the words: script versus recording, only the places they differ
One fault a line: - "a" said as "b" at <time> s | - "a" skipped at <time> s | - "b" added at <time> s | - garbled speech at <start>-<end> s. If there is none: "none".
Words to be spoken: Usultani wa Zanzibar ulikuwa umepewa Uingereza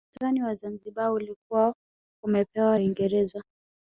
none